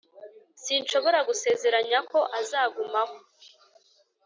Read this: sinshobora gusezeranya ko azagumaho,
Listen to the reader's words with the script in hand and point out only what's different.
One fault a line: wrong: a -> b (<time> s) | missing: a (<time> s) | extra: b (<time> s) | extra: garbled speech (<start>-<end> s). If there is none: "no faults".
no faults